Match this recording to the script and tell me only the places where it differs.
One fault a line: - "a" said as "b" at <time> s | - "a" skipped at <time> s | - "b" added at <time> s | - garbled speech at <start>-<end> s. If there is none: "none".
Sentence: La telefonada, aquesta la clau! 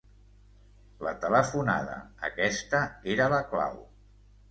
- "era" added at 3.2 s